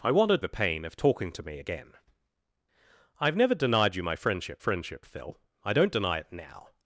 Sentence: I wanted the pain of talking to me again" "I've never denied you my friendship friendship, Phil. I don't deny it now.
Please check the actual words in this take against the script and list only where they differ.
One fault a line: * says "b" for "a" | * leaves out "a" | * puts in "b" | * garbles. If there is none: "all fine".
all fine